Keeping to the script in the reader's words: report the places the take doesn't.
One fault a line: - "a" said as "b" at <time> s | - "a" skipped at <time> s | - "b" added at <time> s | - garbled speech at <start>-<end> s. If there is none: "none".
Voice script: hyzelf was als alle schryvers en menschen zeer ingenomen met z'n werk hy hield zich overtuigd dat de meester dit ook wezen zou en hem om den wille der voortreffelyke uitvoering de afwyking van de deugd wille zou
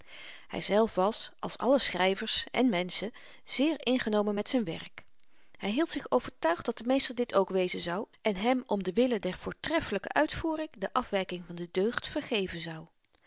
- "wille" said as "vergeven" at 12.1 s